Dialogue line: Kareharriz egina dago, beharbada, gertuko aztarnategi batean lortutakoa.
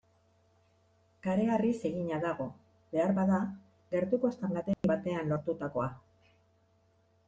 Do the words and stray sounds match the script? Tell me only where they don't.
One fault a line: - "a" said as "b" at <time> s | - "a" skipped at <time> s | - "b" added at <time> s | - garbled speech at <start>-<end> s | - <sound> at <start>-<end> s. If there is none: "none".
- dropout at 4.7-4.8 s